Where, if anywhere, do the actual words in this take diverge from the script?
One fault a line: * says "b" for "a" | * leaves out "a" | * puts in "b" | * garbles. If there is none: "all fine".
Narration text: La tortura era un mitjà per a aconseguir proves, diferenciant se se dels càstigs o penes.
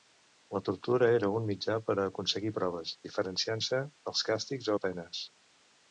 * leaves out "se"